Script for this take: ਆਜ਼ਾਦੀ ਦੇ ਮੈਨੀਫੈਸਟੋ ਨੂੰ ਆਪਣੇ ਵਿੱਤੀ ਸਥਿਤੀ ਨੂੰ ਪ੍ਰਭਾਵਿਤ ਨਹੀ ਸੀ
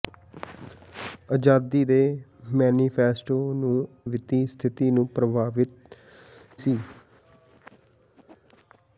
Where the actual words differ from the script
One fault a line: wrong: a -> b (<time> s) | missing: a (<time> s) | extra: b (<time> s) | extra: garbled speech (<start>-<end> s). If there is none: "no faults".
missing: ਆਪਣੇ (3.9 s)
missing: ਨਹੀ (6.0 s)